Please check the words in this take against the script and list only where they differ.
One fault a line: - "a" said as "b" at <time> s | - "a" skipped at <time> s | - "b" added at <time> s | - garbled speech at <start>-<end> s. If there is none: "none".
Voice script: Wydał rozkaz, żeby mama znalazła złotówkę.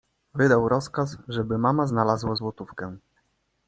none